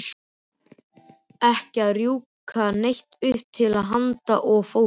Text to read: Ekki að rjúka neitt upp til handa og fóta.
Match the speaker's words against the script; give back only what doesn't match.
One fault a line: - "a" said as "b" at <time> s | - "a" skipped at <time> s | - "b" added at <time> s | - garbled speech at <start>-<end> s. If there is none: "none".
none